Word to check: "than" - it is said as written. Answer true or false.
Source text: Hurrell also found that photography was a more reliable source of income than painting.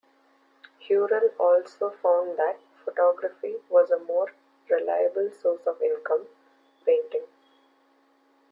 false